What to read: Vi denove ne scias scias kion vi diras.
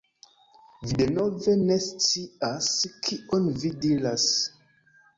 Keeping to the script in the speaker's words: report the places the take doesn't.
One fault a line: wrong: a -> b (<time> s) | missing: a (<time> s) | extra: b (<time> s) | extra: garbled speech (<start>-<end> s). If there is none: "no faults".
missing: scias (2.7 s)